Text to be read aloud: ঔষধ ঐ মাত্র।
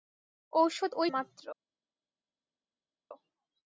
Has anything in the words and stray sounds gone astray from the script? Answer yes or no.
no